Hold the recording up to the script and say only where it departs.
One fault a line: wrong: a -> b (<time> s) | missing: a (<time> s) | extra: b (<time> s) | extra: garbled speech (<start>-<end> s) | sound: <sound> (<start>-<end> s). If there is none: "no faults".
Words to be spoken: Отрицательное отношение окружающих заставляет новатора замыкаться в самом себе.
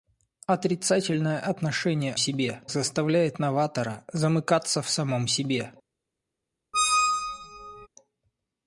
wrong: окружающих -> себе (2.2 s)
sound: squeak (6.7-7.9 s)